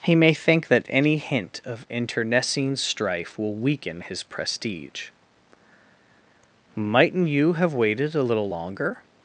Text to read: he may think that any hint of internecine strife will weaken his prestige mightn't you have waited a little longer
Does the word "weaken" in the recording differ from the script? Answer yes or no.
no